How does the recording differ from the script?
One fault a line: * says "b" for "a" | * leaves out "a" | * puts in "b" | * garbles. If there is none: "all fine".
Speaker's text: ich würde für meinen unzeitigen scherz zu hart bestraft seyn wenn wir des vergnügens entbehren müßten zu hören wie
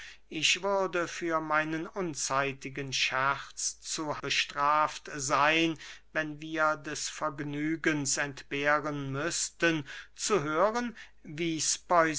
* leaves out "hart"